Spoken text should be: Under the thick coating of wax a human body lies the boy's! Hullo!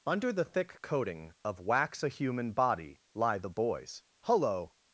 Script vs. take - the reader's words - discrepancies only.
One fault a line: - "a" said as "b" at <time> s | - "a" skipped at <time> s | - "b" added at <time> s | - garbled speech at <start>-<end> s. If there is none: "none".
- "lies" said as "lie" at 3.1 s